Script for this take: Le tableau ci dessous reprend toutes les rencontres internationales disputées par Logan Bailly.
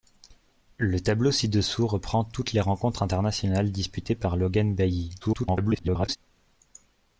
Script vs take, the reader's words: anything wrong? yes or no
yes